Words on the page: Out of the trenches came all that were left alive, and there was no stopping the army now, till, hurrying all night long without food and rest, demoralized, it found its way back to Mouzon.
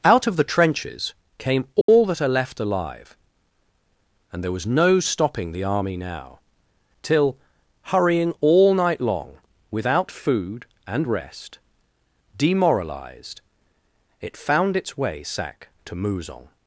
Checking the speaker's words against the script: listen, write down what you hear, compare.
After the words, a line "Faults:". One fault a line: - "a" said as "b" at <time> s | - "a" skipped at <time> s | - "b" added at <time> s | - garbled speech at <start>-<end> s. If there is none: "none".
Out of the trenches came all that are left alive, and there was no stopping the army now, till, hurrying all night long without food and rest, demoralized, it found its way sack to Mouzon.
Faults:
- "were" said as "are" at 2.2 s
- "back" said as "sack" at 15.2 s